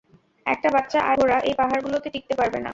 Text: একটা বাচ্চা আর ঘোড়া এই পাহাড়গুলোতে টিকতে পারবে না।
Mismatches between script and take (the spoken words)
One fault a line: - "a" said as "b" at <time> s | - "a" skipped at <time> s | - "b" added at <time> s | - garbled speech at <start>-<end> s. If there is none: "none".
none